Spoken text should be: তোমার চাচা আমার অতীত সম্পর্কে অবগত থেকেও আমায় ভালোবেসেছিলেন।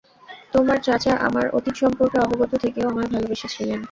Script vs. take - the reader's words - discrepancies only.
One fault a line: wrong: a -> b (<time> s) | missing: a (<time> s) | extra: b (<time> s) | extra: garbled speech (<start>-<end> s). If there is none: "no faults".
no faults